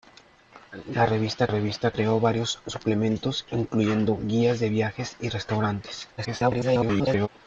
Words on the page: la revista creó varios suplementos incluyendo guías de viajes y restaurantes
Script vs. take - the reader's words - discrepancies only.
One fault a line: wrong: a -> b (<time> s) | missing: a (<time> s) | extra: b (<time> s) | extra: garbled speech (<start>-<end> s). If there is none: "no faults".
extra: revista (1.5 s)
extra: garbled speech (6.2-7.3 s)